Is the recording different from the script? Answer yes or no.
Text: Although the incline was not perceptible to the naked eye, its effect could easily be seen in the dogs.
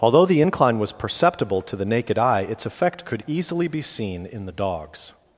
yes